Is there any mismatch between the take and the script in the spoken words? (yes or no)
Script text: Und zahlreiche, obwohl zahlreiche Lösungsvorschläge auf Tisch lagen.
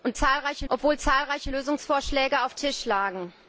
no